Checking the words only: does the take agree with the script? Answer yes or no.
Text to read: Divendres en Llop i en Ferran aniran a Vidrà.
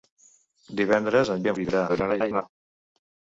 no